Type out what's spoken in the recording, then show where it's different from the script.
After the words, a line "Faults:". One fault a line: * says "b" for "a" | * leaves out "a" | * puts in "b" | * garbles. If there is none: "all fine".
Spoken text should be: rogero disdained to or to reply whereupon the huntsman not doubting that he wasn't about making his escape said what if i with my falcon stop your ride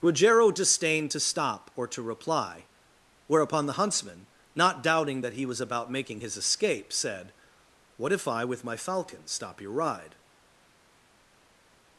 rogero disdained to stop or to reply whereupon the huntsman not doubting that he was about making his escape said what if i with my falcon stop your ride
Faults:
* puts in "stop"
* says "was" for "wasn't"